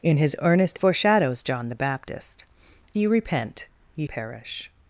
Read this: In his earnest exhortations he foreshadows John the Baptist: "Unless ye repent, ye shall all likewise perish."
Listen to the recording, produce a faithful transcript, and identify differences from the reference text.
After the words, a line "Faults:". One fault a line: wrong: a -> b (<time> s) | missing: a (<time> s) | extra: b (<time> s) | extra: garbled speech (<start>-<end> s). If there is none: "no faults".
In his earnest foreshadows John the Baptist: "Ye repent, ye perish."
Faults:
missing: exhortations he (0.8 s)
missing: Unless (2.4 s)
missing: shall all likewise (4.1 s)